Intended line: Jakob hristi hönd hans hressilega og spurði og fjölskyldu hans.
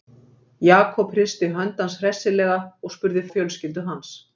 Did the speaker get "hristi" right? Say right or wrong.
right